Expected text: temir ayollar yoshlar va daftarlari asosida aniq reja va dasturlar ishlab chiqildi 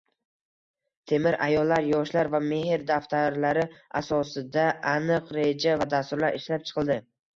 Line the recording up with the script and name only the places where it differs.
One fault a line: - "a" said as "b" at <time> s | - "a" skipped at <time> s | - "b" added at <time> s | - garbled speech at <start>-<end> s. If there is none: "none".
- "mehr" added at 2.5 s